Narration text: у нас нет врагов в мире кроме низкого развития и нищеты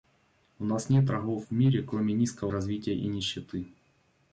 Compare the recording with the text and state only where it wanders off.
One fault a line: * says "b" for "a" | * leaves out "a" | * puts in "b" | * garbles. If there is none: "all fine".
all fine